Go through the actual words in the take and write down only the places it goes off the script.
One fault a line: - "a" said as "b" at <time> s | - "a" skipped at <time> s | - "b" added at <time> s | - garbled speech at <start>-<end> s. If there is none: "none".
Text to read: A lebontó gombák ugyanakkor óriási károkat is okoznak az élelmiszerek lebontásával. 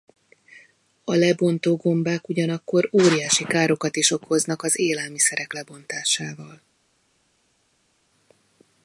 none